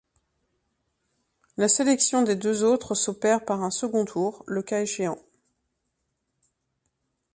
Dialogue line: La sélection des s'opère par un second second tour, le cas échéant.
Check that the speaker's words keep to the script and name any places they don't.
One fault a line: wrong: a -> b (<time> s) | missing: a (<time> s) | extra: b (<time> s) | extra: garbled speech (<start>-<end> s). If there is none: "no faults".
extra: deux autres (2.4 s)
missing: second (4.1 s)